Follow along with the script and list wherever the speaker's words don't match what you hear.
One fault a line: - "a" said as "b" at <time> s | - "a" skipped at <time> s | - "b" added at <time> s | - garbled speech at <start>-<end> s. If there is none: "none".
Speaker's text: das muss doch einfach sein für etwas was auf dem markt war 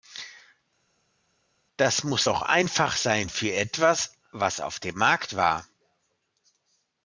none